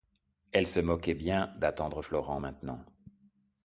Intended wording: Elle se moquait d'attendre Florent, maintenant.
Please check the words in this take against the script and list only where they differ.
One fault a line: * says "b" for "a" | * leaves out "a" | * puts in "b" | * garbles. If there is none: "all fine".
* puts in "bien"